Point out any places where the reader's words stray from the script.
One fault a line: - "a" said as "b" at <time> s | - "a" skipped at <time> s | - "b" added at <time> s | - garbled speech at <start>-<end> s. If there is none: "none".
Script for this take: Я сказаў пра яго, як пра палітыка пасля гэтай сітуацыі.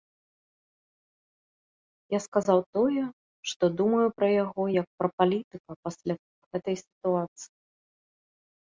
- "тое што думаю" added at 2.8 s